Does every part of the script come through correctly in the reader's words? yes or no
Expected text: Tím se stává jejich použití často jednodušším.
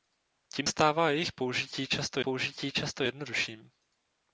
no